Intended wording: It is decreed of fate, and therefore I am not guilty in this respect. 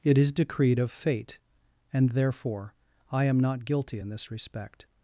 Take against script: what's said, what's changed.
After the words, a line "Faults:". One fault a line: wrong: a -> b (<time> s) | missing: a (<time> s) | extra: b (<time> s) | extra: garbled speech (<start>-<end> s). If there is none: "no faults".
It is decreed of fate, and therefore I am not guilty in this respect.
Faults:
no faults